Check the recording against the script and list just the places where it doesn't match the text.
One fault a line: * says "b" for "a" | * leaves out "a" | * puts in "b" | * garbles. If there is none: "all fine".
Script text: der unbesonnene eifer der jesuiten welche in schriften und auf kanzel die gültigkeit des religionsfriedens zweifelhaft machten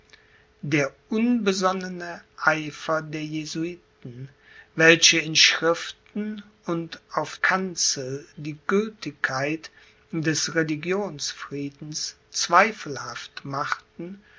all fine